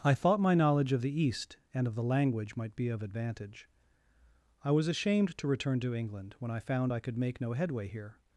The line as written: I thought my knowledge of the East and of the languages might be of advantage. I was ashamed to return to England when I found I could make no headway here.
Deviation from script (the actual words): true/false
true